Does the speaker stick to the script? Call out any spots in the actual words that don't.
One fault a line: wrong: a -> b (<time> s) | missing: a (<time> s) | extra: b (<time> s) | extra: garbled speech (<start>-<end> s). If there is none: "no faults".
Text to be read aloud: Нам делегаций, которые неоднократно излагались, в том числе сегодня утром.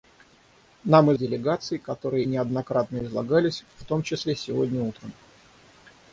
no faults